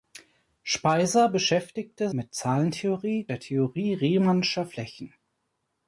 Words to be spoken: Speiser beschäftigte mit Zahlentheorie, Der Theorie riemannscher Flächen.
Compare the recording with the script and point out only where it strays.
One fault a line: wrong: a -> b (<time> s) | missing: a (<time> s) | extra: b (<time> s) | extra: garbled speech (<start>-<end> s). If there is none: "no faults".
no faults